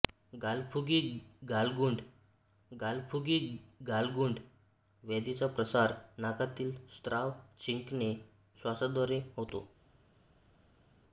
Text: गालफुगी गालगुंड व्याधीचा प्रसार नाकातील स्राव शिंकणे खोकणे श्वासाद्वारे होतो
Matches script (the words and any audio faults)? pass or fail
fail